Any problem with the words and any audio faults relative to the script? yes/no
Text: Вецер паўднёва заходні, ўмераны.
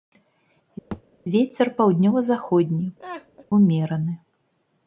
yes